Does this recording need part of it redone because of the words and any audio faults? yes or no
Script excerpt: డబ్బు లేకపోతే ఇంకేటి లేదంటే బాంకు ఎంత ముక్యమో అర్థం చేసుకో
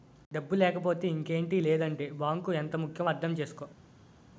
no